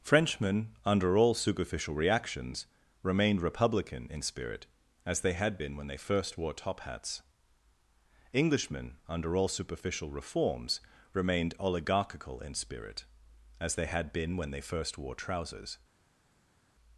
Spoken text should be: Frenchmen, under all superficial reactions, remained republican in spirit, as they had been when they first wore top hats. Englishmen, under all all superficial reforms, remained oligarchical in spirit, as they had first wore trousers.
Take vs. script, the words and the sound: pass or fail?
fail